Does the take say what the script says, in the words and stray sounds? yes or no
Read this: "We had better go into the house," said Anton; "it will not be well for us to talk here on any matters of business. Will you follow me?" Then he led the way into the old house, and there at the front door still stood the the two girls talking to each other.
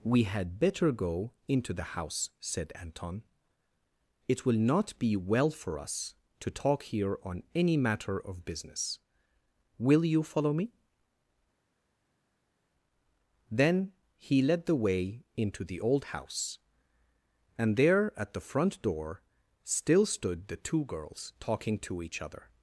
no